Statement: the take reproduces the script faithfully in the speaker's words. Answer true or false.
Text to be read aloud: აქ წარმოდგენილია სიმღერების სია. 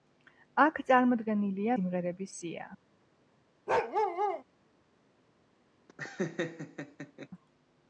true